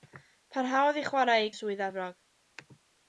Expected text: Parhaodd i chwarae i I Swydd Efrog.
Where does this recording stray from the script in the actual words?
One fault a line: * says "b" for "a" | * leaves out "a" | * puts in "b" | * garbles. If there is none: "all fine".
all fine